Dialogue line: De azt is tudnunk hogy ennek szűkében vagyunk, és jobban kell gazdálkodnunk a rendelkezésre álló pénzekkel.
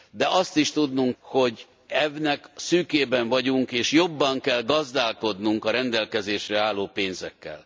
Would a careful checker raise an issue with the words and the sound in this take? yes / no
no